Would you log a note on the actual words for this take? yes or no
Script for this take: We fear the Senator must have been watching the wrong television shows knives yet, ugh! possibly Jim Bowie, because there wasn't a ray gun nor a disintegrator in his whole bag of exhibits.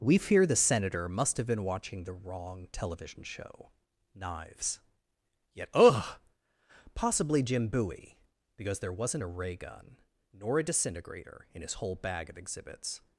yes